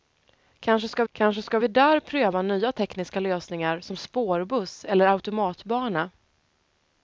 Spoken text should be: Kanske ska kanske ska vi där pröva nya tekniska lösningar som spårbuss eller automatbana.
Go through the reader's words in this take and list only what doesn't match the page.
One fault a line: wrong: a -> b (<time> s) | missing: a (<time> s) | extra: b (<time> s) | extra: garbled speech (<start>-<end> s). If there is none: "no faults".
no faults